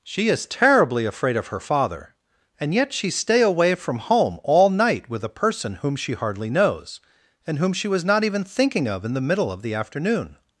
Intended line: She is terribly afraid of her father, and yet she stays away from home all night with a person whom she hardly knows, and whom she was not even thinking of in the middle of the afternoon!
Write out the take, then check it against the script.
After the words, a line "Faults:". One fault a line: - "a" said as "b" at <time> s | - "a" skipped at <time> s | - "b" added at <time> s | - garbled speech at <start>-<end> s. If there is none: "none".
She is terribly afraid of her father, and yet she stay away from home all night with a person whom she hardly knows, and whom she was not even thinking of in the middle of the afternoon!
Faults:
- "stays" said as "stay" at 3.1 s